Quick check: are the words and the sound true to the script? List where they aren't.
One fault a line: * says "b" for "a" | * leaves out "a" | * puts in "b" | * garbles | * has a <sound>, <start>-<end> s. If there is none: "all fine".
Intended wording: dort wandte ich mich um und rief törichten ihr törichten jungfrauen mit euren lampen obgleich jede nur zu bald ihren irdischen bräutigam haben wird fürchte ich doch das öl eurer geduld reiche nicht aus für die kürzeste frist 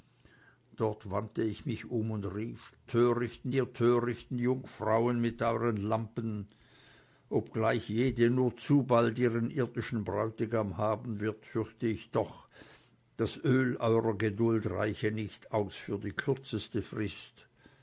all fine